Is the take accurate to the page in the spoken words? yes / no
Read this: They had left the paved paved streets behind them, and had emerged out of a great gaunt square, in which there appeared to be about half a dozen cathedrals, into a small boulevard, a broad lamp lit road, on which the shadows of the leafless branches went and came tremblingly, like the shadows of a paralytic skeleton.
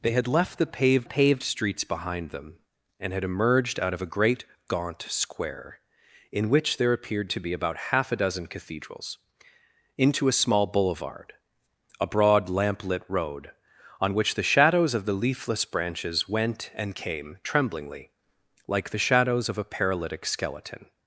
yes